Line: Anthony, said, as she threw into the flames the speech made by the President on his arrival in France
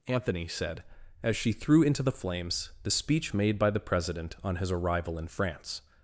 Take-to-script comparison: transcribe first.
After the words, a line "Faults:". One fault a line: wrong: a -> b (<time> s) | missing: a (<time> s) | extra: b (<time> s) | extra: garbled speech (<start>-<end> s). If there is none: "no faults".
Anthony, said, as she threw into the flames the speech made by the President on his arrival in France
Faults:
no faults